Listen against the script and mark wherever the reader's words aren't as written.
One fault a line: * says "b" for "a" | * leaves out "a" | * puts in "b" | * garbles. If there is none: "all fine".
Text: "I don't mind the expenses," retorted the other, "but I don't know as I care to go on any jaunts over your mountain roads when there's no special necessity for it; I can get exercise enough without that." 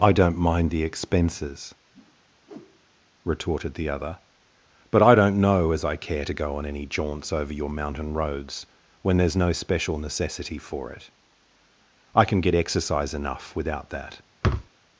all fine